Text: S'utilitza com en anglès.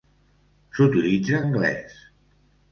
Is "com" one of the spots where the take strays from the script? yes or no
yes